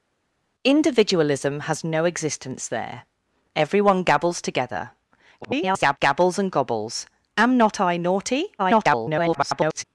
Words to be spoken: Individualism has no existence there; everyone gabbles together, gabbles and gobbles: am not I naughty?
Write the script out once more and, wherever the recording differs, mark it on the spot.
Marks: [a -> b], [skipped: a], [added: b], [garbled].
Individualism has no existence there; everyone gabbles together, [garbled] gabbles and gobbles: am not I naughty? [garbled]